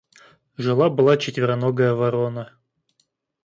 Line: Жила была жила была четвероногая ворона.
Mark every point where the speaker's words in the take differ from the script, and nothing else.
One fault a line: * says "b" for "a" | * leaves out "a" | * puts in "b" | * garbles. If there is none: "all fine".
* leaves out "жила была"